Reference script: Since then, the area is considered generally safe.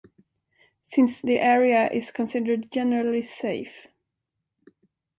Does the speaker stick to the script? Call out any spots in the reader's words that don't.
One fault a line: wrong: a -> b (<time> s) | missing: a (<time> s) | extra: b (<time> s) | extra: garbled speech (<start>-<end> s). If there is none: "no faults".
missing: then (1.2 s)